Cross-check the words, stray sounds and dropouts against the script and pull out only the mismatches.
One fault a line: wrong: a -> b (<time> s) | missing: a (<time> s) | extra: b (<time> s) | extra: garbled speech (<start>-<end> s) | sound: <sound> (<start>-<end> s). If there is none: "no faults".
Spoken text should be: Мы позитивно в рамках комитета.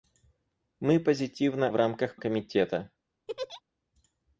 sound: laugh (3.3-3.6 s)